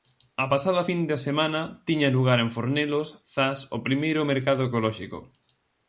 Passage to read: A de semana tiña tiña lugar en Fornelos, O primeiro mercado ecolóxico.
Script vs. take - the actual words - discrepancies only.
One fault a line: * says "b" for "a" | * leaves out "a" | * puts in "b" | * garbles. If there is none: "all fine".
* puts in "pasada fin"
* leaves out "tiña"
* puts in "Zas"